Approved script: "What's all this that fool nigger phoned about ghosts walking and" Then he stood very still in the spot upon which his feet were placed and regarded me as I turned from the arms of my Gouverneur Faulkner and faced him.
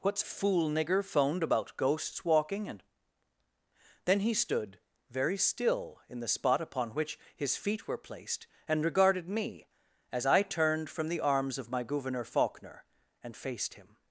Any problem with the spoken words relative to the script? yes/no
yes